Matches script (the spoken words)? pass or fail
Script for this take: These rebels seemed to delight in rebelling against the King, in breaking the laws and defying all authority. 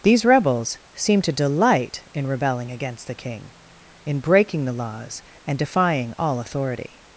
pass